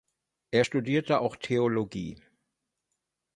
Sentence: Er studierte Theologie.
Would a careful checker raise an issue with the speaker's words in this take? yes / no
yes